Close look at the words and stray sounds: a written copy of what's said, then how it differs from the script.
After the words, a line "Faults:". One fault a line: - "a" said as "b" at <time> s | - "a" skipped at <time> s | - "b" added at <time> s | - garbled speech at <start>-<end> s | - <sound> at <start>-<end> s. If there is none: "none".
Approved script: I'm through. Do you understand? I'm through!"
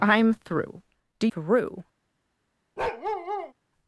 I'm through. Do through!"
Faults:
- "you understand I'm" skipped at 1.3 s
- bark at 2.8-3.5 s